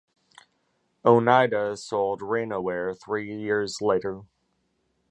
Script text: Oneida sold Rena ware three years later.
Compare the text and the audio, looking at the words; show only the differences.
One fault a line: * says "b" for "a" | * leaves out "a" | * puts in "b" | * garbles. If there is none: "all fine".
all fine